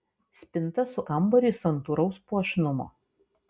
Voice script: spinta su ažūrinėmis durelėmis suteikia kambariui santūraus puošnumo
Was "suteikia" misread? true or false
true